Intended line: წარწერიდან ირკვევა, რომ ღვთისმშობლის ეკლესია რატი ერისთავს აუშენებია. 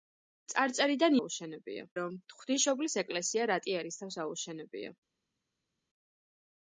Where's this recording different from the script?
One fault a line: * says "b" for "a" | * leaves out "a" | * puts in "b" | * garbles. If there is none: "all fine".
* says "აუშენებია" for "ირკვევა"